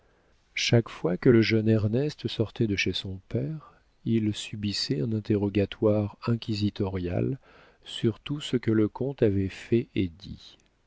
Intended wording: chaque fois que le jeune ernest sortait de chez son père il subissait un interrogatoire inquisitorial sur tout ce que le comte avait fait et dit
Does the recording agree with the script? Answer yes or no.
yes